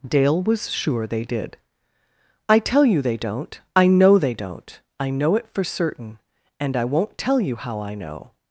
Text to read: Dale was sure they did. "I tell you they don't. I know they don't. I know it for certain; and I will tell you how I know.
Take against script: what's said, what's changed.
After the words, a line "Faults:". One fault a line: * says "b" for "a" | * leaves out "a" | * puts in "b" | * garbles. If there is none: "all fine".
Dale was sure they did. "I tell you they don't. I know they don't. I know it for certain; and I won't tell you how I know.
Faults:
* says "won't" for "will"